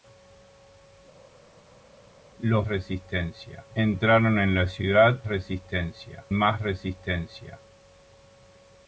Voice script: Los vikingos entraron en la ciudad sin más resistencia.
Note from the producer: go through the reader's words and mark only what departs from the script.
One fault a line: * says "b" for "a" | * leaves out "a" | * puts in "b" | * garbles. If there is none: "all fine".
* says "resistencia" for "vikingos"
* says "resistencia" for "sin"